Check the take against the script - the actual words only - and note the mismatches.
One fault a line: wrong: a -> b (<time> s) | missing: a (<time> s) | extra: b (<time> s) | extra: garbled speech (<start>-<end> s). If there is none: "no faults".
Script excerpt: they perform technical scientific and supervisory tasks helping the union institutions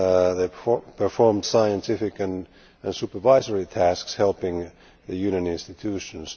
missing: technical (1.4 s)